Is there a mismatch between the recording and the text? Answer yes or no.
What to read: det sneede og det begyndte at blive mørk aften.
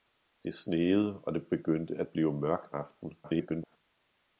yes